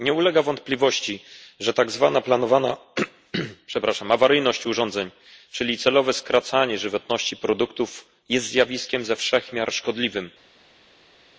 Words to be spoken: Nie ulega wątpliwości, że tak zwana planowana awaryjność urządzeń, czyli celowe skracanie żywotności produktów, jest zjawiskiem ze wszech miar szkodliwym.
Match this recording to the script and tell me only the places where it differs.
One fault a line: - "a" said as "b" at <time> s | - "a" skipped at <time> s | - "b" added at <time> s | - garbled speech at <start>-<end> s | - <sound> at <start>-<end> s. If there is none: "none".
none